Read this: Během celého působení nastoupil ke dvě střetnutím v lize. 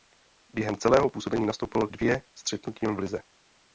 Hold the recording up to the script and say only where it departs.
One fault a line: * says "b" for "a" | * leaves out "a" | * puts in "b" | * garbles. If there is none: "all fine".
* leaves out "ke"